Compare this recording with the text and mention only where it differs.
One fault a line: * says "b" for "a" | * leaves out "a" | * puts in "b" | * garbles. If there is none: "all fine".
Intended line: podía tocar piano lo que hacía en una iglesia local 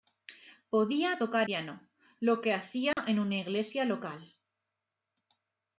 all fine